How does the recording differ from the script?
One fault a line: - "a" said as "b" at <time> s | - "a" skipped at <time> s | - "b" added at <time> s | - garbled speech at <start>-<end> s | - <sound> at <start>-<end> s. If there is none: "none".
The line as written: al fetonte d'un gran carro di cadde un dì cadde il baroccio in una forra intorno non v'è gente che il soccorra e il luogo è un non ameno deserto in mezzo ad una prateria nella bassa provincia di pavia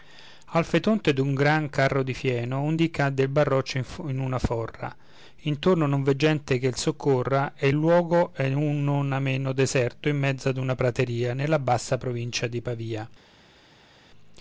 - "cadde" said as "fieno" at 2.1 s